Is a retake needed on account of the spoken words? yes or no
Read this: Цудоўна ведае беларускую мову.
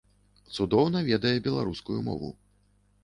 no